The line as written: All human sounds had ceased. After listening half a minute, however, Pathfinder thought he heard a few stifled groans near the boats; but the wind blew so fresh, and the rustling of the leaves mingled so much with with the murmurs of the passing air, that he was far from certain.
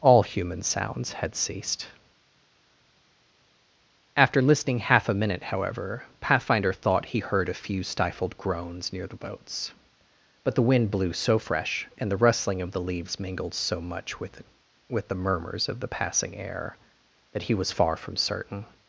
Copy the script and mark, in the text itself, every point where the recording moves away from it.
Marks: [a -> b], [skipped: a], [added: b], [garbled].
All human sounds had ceased. After listening half a minute, however, Pathfinder thought he heard a few stifled groans near the boats; but the wind blew so fresh, and the rustling of the leaves mingled so much with with the murmurs of the passing air, that he was far from certain.